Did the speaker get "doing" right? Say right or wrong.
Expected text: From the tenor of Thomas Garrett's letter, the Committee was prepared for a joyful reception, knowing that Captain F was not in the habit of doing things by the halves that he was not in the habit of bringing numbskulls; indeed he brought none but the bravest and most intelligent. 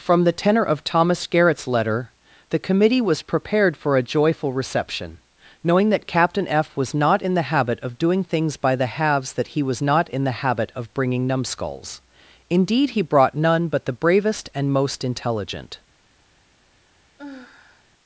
right